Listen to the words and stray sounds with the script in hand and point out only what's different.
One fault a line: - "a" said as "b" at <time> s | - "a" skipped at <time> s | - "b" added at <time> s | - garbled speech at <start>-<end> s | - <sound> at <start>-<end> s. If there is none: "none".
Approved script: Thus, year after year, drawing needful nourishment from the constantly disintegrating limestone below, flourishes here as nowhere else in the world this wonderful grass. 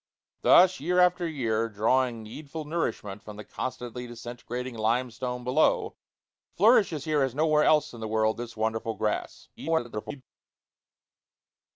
- garbled speech at 9.6-10.2 s